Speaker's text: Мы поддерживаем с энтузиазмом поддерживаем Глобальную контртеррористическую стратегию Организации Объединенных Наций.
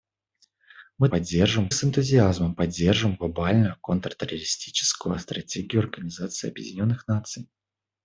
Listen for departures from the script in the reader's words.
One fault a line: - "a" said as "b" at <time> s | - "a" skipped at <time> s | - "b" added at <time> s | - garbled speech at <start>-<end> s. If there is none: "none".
none